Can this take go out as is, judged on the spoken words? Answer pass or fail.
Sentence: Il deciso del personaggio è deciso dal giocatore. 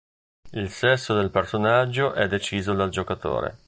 fail